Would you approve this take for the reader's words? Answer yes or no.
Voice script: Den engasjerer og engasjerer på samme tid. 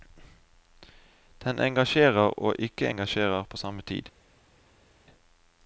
no